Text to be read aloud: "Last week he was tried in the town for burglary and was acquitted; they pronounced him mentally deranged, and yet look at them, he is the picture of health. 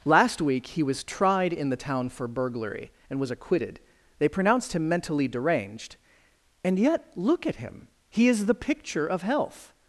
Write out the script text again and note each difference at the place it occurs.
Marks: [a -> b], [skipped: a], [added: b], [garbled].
"Last week he was tried in the town for burglary and was acquitted; they pronounced him mentally deranged, and yet look at [them, -> him] he is the picture of health.